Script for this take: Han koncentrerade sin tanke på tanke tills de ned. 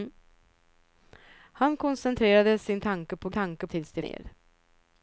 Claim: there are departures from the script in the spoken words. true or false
false